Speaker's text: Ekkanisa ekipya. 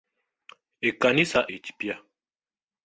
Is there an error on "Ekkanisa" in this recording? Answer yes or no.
no